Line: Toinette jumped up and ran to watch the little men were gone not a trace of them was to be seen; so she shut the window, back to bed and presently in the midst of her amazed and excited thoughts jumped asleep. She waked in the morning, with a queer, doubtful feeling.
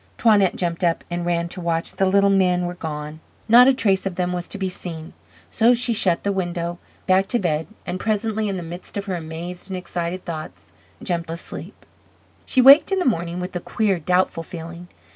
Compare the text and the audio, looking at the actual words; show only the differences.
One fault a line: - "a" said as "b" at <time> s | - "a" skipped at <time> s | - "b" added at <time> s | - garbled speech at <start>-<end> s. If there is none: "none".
none